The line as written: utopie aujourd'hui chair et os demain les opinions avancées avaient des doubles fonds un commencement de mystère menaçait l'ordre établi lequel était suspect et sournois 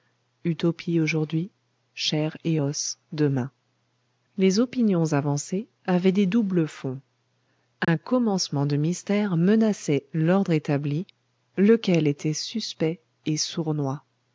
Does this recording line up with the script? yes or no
yes